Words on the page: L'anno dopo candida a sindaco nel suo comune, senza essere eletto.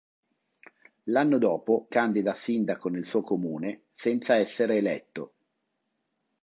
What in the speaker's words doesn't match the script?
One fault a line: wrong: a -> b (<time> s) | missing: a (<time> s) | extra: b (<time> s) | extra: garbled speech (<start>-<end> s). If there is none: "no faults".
no faults